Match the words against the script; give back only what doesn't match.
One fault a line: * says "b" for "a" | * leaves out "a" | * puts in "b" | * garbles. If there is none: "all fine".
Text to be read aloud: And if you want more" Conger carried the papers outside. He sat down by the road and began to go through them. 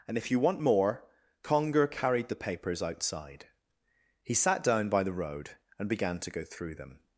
all fine